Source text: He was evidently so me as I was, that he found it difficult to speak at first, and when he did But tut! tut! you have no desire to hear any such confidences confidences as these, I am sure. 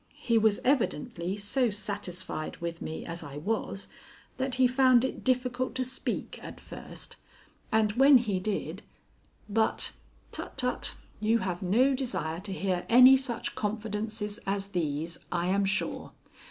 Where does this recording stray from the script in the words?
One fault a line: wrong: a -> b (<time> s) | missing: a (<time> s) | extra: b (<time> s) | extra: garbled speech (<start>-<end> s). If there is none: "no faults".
extra: satisfied with (1.7 s)
missing: confidences (14.4 s)